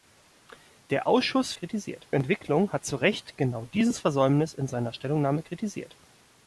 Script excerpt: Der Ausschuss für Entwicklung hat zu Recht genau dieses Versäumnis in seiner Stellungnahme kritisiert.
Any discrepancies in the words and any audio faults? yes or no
yes